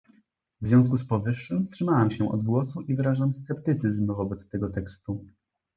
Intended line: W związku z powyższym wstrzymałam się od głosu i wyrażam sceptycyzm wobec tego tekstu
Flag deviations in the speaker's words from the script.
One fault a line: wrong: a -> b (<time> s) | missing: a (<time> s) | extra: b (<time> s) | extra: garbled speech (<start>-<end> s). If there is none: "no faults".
no faults